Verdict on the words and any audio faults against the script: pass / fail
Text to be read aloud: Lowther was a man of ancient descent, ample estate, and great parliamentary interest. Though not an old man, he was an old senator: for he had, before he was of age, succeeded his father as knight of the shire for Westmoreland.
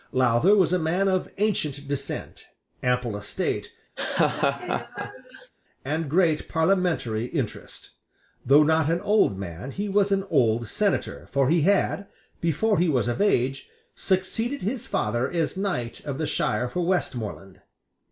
fail